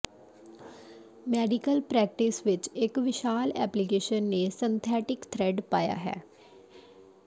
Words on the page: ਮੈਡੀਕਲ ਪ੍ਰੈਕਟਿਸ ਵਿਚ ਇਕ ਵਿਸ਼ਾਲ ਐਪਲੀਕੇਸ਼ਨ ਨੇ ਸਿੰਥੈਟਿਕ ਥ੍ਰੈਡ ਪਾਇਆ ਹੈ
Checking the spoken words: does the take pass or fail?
pass